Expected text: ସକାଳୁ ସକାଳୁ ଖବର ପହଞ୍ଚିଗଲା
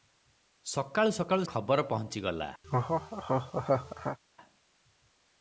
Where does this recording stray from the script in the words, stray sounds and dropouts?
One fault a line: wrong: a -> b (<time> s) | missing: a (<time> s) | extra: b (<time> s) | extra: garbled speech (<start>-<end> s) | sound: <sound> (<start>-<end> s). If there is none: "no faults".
sound: laugh (2.6-4.2 s)